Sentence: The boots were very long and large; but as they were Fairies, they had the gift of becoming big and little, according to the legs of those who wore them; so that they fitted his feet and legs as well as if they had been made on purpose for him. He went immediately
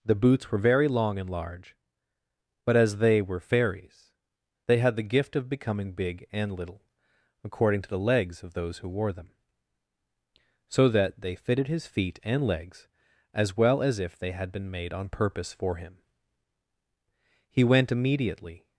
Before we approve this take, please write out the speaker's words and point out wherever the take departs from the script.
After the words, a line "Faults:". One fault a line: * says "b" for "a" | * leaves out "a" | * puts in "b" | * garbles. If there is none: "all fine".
The boots were very long and large; but as they were Fairies, they had the gift of becoming big and little, according to the legs of those who wore them; so that they fitted his feet and legs as well as if they had been made on purpose for him. He went immediately
Faults:
all fine